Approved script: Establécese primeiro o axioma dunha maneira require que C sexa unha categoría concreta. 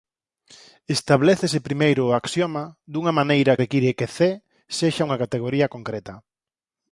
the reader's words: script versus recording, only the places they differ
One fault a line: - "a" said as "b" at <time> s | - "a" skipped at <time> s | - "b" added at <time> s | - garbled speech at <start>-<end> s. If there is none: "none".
none